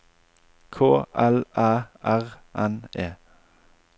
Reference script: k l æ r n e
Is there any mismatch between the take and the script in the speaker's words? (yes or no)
no